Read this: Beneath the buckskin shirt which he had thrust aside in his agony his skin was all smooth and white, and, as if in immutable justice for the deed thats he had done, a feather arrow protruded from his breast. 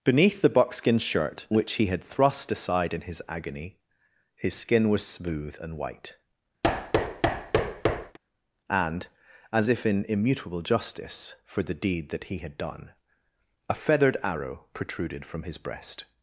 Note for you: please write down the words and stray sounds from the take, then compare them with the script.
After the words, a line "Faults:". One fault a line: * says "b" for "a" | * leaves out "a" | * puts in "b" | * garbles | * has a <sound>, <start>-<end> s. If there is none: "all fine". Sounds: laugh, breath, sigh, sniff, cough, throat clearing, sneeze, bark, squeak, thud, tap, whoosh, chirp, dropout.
Beneath the buckskin shirt which he had thrust aside in his agony his skin was smooth and white, and, as if in immutable justice for the deed that he had done, a feathered arrow protruded from his breast.
Faults:
* leaves out "all"
* has a thud, 6.6-8.2 s
* says "that" for "thats"
* says "feathered" for "feather"